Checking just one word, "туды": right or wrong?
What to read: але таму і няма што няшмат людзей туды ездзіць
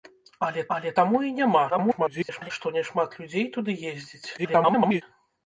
right